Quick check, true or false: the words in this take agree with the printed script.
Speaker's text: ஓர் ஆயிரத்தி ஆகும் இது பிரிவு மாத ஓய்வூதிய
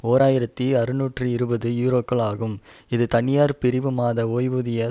false